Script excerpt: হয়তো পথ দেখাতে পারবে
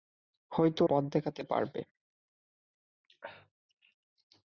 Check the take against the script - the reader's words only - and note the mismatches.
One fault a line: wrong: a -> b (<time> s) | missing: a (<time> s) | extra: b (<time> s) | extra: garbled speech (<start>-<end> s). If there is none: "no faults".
no faults